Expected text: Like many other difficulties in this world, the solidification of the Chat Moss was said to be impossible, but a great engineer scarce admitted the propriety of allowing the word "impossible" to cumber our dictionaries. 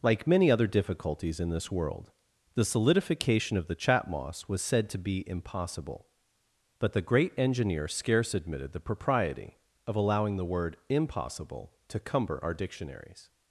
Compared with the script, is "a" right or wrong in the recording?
wrong